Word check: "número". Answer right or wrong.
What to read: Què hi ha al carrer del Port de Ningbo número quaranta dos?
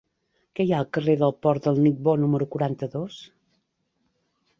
right